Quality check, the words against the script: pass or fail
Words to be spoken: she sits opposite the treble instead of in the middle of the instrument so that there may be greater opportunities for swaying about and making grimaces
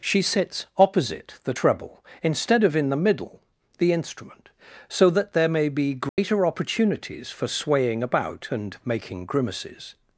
fail